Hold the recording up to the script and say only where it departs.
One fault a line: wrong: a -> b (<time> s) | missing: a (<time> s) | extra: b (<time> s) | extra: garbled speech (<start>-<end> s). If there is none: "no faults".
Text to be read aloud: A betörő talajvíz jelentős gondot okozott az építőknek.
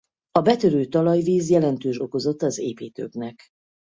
missing: gondot (2.0 s)